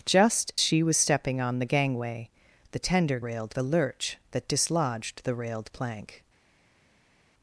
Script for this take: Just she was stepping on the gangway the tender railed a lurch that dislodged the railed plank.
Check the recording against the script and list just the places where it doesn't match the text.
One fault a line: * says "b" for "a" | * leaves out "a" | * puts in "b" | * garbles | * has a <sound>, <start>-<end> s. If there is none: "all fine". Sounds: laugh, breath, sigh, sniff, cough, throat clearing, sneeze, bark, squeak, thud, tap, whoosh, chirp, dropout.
all fine